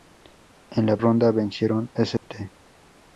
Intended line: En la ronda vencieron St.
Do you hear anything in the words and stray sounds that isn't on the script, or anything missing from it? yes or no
yes